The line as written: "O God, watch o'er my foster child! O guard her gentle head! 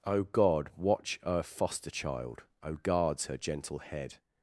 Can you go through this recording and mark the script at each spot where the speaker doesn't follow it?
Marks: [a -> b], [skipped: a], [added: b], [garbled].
"O God, watch o'er [skipped: my] foster child! O [guard -> guards] her gentle head!